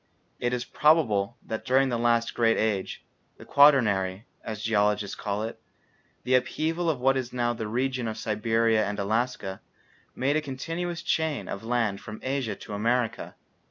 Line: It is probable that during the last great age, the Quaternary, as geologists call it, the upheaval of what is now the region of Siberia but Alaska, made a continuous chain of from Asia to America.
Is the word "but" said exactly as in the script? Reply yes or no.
no